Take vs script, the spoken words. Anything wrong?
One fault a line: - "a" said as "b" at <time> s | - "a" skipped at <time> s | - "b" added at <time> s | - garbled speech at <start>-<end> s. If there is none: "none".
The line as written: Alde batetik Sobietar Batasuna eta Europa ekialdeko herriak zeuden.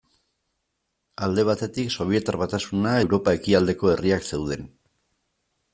- "eta" skipped at 3.0 s